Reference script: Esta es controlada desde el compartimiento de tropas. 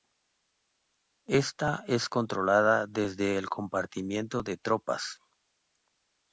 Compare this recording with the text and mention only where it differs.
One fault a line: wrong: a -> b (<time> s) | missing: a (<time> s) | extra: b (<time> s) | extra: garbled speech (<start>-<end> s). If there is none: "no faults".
no faults